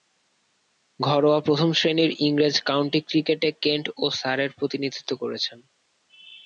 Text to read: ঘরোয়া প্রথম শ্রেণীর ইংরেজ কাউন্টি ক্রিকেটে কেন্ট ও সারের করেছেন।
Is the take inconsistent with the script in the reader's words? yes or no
yes